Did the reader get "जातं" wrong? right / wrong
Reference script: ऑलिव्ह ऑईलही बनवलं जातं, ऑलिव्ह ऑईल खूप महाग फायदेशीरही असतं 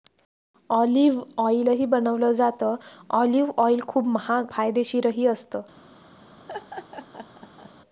right